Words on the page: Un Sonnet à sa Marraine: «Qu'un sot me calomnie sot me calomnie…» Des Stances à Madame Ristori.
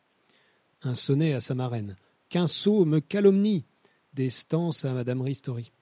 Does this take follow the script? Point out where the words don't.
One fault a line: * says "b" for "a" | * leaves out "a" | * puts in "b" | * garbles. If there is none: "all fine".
* leaves out "sot me calomnie"